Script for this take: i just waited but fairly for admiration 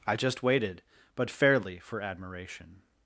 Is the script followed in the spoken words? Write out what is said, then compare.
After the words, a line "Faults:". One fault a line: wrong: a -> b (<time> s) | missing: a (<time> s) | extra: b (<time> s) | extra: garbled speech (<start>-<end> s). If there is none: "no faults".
i just waited but fairly for admiration
Faults:
no faults